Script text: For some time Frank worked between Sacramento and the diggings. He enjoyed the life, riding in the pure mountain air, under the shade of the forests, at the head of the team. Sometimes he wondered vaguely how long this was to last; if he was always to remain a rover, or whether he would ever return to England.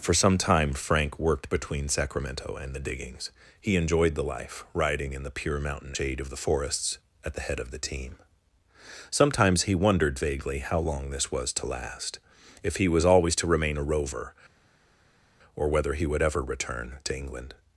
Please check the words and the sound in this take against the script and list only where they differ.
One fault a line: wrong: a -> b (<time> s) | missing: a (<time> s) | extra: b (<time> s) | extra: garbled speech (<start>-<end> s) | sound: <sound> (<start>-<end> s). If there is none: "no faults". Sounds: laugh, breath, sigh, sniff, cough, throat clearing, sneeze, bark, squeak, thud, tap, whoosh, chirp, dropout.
missing: air under the (5.9 s)